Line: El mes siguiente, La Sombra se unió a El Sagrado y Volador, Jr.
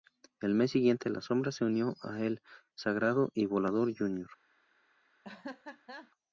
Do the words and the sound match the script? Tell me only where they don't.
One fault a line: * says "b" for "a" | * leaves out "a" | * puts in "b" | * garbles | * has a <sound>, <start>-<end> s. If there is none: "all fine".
* has a laugh, 5.2-6.1 s